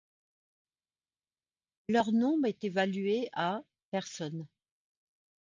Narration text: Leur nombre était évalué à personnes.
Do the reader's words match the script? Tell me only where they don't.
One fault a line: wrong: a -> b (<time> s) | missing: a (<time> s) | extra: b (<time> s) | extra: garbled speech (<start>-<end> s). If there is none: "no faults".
wrong: était -> est (2.5 s)